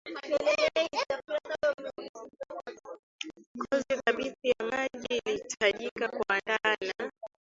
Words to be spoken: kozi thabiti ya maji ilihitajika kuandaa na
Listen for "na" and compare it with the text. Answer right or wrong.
right